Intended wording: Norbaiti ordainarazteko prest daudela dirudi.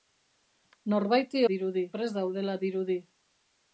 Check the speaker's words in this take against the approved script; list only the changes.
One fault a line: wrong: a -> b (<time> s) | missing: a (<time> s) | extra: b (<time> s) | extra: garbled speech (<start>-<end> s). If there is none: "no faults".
wrong: ordainarazteko -> dirudi (1.5 s)